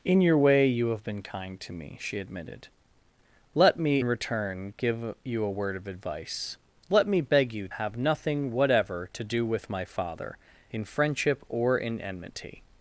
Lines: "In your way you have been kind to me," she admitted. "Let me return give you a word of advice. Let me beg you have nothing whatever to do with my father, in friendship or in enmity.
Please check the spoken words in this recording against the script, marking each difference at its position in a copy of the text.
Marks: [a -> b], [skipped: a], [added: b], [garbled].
"In your way you have been kind to me," she admitted. "Let me return give you a word of advice. Let me beg you have nothing whatever to do with my father, in friendship or in enmity.